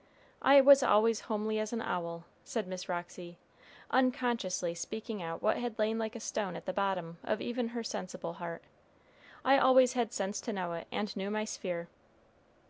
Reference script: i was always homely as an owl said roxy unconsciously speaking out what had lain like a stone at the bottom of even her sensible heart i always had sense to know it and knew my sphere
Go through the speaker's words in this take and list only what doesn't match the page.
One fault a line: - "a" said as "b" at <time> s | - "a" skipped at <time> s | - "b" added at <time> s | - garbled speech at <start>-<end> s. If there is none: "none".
- "miss" added at 2.6 s